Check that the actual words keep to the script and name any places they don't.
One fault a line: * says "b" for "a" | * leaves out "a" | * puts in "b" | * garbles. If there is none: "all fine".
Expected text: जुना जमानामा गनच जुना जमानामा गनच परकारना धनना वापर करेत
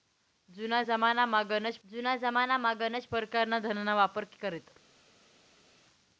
all fine